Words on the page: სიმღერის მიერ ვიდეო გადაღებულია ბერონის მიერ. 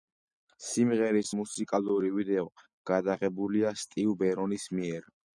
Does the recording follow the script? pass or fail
fail